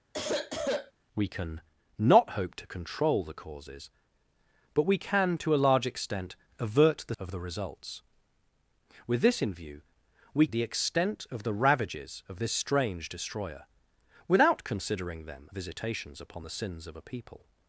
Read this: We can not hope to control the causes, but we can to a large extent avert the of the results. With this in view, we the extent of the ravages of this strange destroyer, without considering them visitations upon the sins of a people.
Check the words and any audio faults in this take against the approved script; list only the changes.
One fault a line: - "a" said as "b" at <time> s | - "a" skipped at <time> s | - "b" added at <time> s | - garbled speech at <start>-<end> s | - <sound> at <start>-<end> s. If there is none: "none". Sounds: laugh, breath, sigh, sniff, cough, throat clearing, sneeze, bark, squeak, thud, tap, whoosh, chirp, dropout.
- sniff at 0.1-0.9 s